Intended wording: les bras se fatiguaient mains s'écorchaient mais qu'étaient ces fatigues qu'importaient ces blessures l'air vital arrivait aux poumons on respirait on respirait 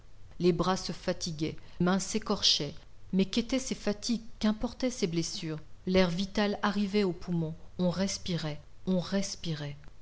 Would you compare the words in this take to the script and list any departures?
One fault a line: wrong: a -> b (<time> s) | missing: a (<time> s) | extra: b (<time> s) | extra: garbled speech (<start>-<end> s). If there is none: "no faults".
no faults